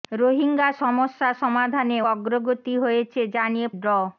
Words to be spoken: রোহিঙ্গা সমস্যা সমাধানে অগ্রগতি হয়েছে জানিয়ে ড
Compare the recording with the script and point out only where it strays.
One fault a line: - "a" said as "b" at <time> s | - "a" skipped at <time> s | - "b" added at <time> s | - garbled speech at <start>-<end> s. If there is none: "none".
none